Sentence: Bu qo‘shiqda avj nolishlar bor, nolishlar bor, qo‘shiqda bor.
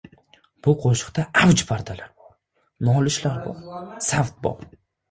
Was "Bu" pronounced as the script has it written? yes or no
yes